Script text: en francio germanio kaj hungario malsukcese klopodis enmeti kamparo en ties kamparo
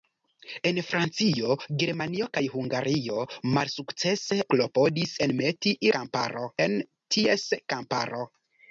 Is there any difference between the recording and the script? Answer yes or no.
no